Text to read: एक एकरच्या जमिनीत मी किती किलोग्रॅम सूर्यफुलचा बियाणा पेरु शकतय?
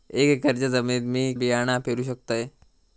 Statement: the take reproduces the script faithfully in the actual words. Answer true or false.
false